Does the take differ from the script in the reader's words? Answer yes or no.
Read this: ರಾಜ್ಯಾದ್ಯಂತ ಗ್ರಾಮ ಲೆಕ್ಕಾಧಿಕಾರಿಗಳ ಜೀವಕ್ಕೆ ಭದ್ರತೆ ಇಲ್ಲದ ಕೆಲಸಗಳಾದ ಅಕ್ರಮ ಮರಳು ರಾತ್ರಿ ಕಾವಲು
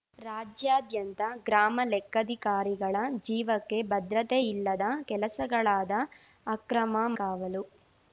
yes